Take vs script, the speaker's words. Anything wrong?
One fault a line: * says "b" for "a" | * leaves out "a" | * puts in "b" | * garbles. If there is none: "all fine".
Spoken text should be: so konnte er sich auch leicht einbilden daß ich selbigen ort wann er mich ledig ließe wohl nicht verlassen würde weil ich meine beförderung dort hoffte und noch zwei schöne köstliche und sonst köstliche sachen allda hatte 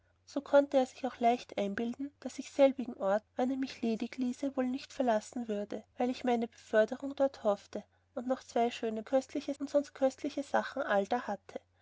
all fine